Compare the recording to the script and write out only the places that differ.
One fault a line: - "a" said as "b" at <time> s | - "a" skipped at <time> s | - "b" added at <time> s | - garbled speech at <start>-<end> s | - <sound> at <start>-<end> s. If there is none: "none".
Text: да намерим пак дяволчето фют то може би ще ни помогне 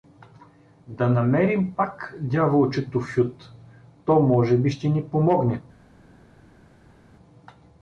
none